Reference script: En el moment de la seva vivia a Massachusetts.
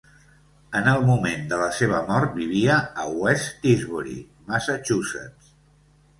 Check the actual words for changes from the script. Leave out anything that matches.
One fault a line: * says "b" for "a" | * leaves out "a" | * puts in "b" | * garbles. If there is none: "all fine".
* puts in "mort"
* puts in "West Tisbury"